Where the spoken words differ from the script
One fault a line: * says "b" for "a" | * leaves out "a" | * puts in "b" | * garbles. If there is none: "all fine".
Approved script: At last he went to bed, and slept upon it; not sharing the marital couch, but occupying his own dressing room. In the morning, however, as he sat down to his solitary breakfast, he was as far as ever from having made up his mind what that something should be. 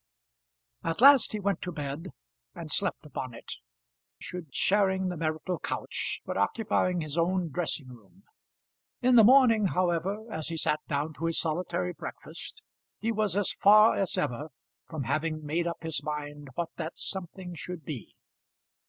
* says "should" for "not"